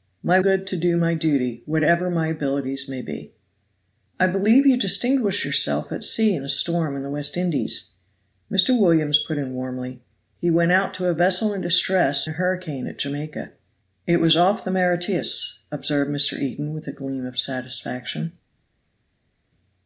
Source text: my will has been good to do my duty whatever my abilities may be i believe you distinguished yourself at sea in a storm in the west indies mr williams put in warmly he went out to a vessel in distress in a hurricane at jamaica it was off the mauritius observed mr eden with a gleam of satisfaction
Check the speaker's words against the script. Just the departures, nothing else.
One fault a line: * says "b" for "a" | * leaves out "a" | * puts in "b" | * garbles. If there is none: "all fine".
* leaves out "will has been"
* leaves out "in"